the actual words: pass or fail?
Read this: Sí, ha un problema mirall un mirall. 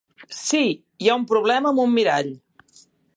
fail